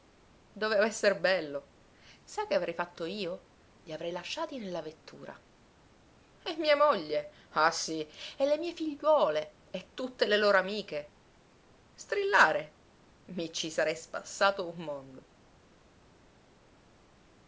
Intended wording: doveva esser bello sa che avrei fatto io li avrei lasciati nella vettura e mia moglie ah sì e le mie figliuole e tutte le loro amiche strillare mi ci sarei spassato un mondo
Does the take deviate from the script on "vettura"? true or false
false